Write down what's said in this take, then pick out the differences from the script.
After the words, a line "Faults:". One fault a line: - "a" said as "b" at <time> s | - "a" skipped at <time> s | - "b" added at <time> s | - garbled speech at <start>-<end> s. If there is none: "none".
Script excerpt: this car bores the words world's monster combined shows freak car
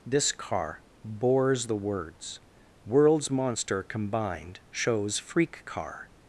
this car bores the words world's monster combined shows freak car
Faults:
none